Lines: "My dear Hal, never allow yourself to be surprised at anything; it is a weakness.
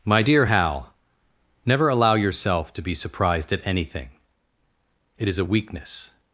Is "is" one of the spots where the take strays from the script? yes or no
no